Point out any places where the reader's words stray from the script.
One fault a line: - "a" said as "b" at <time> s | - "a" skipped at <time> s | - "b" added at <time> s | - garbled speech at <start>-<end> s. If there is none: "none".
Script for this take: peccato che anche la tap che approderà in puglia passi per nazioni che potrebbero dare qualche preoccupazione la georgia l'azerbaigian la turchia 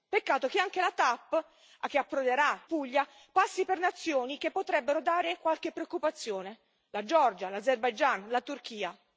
- "in" skipped at 2.6 s